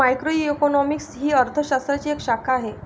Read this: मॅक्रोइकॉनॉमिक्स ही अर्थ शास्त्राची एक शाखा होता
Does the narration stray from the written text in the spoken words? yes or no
yes